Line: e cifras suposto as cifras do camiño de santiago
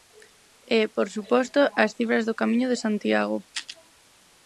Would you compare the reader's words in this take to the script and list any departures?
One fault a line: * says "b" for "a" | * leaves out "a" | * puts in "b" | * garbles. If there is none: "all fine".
* says "por" for "cifras"